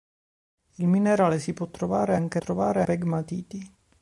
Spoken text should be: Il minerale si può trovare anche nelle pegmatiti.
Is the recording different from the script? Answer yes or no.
yes